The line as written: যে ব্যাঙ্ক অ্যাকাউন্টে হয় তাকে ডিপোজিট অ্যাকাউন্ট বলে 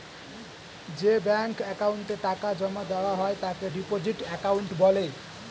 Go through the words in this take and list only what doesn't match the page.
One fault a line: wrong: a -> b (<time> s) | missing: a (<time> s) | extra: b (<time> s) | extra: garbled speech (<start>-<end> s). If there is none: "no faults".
extra: টাকা জমা দেওয়া (2.2 s)